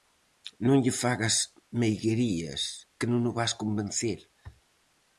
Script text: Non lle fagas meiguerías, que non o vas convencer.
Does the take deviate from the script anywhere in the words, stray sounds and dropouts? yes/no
no